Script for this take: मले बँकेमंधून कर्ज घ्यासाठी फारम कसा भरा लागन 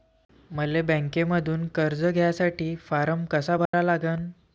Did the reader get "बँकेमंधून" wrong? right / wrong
right